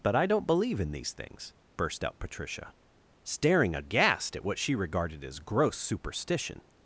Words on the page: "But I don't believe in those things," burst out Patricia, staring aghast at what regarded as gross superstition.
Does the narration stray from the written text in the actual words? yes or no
yes